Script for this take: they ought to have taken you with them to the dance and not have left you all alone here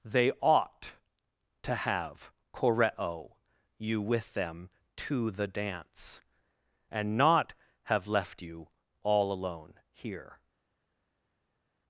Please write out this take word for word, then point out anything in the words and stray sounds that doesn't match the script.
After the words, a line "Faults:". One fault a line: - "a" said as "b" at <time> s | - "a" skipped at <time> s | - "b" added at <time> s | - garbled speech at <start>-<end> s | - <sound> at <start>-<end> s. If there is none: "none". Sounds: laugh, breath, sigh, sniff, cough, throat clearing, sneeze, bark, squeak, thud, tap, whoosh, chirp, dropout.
they ought to have koreo you with them to the dance and not have left you all alone here
Faults:
- "taken" said as "koreo" at 2.5 s